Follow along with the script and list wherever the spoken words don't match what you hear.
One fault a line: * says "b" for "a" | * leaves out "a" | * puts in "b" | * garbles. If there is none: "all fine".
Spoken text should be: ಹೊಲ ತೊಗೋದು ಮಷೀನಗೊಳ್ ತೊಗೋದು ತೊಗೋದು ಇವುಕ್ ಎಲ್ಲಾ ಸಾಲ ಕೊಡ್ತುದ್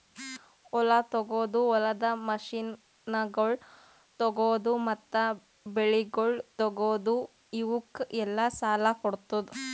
* puts in "ಹೊಲದ"
* puts in "ಮತ್ತ ಬೆಳಿಗೊಳ್"